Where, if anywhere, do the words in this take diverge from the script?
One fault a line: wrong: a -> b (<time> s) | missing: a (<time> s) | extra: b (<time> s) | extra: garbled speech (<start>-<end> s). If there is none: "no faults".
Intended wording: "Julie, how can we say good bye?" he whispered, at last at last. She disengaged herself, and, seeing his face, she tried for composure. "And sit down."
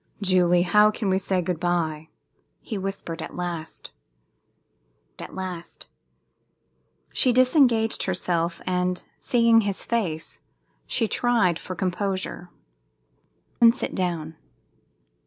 no faults